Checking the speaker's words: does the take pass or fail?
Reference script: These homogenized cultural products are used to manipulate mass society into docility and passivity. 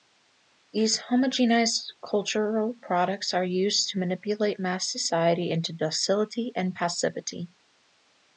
pass